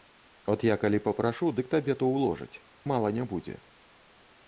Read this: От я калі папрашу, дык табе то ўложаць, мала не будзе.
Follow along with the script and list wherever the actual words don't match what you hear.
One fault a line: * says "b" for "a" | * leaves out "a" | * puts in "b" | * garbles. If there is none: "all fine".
all fine